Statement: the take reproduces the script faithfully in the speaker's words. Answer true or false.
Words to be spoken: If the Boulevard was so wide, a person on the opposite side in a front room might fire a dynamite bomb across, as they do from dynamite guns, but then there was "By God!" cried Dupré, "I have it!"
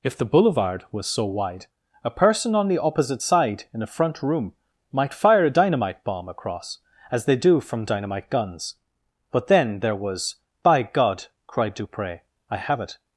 true